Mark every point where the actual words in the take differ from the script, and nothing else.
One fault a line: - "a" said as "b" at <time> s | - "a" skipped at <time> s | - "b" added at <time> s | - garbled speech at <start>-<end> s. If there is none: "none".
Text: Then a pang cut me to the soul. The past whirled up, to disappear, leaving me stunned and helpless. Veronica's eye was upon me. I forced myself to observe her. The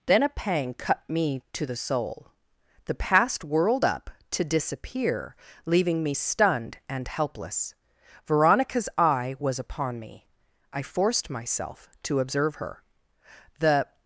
none